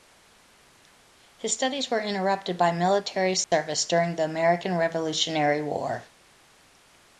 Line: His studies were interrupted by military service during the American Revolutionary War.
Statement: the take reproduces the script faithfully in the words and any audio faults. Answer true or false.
false